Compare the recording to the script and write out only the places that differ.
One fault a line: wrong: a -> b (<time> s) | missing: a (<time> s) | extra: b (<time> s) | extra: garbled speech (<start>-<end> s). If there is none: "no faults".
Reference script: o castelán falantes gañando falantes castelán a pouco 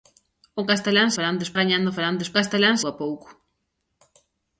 no faults